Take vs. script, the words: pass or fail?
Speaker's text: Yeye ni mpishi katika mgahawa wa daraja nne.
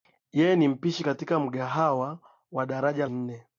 pass